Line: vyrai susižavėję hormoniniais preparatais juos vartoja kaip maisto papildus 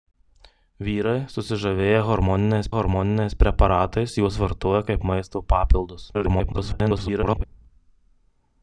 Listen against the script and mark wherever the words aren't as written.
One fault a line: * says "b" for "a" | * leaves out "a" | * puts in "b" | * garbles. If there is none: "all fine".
* puts in "hormoniniais"
* garbles